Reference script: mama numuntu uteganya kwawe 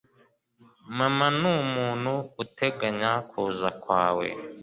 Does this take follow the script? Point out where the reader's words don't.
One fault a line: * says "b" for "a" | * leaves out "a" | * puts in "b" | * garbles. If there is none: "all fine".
* puts in "kuza"